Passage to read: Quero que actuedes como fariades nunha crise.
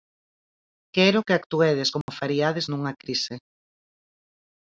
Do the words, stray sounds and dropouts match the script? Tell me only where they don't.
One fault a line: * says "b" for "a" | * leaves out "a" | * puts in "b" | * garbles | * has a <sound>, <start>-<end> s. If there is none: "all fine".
* has a dropout, 2.0-2.1 s